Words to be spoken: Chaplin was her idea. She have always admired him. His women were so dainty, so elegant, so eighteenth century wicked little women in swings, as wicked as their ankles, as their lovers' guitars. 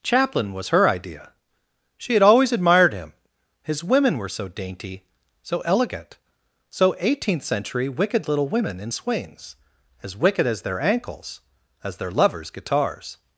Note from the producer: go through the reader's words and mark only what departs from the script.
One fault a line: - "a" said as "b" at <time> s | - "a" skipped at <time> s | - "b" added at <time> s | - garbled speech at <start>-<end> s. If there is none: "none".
- "have" said as "had" at 2.1 s